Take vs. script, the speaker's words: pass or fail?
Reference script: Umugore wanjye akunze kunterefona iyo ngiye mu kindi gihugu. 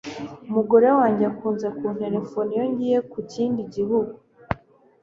pass